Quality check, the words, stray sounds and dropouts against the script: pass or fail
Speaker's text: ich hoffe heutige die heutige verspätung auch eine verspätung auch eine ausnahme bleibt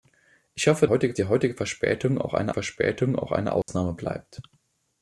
fail